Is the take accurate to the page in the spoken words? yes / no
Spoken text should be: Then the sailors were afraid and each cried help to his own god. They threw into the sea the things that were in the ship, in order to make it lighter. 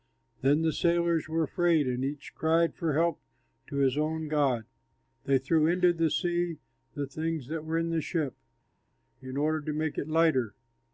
no